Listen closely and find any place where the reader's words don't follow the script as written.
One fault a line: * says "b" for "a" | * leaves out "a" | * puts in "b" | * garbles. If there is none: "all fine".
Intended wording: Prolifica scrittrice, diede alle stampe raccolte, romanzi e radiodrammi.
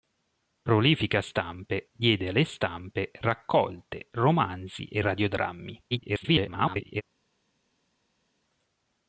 * says "stampe" for "scrittrice"
* garbles